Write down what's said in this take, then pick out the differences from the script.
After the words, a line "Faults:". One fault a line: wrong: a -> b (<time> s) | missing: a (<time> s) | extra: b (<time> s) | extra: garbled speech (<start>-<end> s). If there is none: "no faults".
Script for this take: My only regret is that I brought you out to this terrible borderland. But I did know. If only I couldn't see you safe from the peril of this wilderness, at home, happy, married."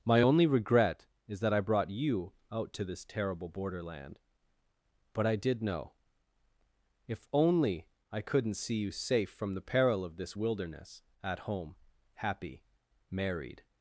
My only regret is that I brought you out to this terrible borderland. But I did know. If only I couldn't see you safe from the peril of this wilderness, at home, happy, married."
Faults:
no faults